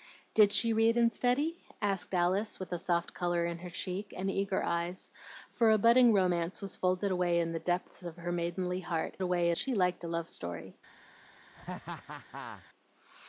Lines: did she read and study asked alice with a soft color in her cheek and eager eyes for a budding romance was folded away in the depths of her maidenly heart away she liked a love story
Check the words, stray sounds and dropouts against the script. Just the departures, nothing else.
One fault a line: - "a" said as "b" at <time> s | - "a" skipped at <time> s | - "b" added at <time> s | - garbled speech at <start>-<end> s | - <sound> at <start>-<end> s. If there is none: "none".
- laugh at 11.5-12.7 s